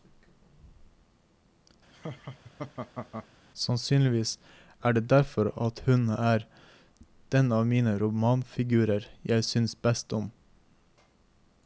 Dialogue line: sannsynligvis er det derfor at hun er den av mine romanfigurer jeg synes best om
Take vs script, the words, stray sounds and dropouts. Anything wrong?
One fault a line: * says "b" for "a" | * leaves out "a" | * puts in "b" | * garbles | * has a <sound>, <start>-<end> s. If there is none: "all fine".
* has a laugh, 1.9-3.3 s